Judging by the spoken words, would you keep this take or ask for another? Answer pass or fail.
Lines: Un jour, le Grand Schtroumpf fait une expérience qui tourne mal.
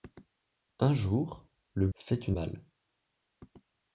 fail